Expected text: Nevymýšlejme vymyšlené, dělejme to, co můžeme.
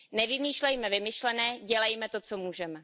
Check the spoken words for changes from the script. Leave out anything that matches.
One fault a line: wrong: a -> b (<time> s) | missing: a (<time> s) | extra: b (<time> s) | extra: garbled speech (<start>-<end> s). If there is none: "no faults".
no faults